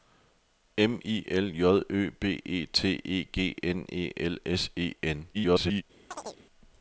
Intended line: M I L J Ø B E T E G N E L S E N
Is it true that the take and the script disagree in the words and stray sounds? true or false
true